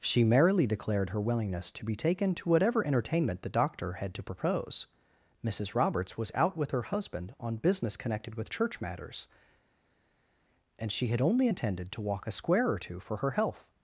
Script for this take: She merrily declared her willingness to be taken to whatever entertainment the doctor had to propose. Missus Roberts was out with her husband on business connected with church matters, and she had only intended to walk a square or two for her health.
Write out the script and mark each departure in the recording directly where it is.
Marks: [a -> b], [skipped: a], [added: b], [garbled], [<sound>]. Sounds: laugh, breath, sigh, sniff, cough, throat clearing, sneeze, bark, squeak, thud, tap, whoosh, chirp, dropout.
She merrily declared her willingness to be taken to whatever entertainment the doctor had to propose. Missus Roberts was out with her husband on business connected with church matters, and she had only intended to walk a square or two for her health.